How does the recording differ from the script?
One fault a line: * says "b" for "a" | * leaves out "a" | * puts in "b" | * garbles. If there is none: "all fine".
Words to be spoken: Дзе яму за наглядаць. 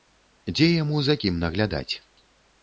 * puts in "кім"